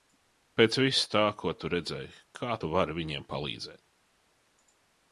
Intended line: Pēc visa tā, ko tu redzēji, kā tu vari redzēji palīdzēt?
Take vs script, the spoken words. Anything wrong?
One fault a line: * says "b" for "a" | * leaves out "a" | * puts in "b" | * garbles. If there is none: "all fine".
* says "viņiem" for "redzēji"